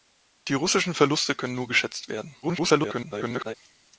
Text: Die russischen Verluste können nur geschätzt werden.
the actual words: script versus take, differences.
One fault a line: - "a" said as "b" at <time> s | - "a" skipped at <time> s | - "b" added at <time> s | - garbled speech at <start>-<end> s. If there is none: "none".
- garbled speech at 2.4-3.5 s